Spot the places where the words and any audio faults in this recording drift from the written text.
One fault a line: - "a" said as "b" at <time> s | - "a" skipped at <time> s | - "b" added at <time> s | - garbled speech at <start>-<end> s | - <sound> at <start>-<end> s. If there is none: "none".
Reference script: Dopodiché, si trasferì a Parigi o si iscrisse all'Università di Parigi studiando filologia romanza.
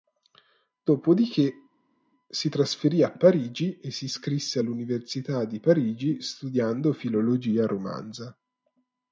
- "o" said as "e" at 3.8 s